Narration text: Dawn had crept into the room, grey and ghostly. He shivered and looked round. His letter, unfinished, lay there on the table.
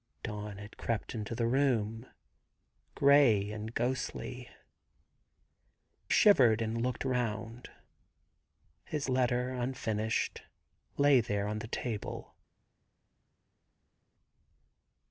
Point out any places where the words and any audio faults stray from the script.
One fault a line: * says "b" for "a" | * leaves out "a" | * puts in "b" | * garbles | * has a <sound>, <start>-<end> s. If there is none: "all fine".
* leaves out "He"